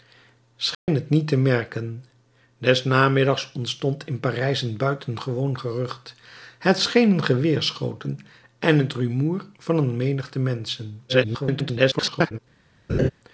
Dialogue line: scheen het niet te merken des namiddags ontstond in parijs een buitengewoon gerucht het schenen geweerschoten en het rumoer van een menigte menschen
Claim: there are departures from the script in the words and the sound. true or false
true